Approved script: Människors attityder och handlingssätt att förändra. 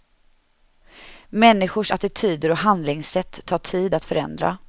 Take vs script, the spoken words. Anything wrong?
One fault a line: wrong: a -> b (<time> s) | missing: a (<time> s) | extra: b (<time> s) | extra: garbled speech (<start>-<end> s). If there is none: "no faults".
extra: tar tid (3.5 s)